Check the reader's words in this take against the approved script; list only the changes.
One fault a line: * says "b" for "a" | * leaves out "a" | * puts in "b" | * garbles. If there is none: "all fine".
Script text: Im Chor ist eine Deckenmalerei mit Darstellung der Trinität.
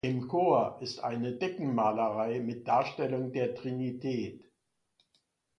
all fine